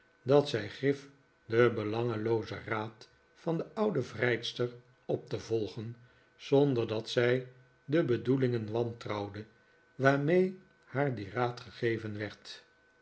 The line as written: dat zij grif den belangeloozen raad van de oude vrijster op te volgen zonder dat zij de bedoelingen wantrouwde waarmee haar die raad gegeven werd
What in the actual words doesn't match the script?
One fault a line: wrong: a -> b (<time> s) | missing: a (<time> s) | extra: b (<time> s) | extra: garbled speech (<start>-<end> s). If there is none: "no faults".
no faults